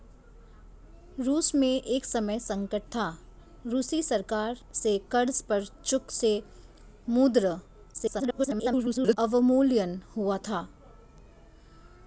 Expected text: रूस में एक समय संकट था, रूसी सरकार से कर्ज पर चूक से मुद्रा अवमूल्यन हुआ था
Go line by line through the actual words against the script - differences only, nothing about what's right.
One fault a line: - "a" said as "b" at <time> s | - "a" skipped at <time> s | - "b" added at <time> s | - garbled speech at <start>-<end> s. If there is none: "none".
- garbled speech at 7.9-9.2 s